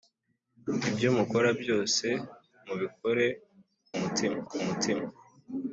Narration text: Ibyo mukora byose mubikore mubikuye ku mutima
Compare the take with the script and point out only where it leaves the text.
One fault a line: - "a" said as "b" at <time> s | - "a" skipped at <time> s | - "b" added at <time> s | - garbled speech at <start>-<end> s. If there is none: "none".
- "mubikuye" said as "mutima" at 4.0 s